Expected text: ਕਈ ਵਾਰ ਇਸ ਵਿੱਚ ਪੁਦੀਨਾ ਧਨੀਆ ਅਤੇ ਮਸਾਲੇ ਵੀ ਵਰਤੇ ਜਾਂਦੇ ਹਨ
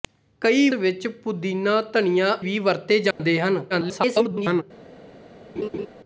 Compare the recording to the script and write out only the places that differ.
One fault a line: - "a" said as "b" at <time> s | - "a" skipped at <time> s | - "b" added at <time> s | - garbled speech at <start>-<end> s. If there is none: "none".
- "ਵਾਰ ਇਸ" skipped at 0.7 s
- "ਅਤੇ ਮਸਾਲੇ" skipped at 2.4 s
- garbled speech at 3.7-4.6 s